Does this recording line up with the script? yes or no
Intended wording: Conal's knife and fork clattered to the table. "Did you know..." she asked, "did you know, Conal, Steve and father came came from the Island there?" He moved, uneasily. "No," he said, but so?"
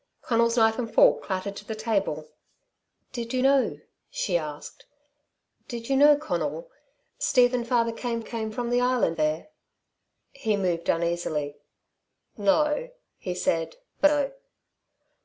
yes